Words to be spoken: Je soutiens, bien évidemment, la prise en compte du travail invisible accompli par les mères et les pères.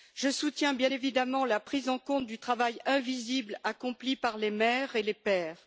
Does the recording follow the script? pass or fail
pass